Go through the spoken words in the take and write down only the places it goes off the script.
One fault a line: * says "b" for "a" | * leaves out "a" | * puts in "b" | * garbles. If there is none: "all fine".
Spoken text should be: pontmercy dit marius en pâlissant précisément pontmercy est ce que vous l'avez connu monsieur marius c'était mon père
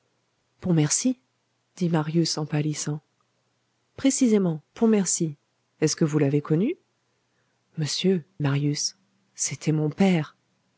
all fine